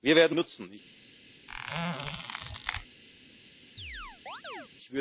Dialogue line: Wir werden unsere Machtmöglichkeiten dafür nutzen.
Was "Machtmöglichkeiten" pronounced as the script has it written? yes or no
no